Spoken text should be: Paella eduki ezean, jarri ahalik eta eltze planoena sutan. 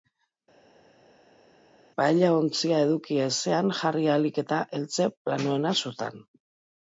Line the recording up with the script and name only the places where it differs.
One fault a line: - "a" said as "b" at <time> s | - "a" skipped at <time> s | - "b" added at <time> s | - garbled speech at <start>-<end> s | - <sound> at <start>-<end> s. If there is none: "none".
- "ontzia" added at 2.3 s